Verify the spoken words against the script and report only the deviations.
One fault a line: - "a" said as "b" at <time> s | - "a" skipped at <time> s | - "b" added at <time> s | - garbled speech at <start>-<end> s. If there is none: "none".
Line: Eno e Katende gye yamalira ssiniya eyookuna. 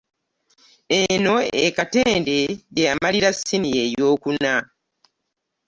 none